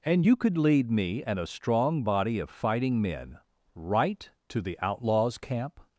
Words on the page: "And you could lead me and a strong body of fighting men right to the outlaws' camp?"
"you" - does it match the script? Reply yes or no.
yes